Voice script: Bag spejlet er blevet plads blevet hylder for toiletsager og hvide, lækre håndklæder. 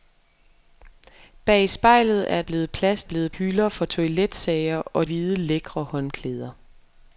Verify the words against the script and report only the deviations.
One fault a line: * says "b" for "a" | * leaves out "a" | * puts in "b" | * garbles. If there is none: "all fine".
all fine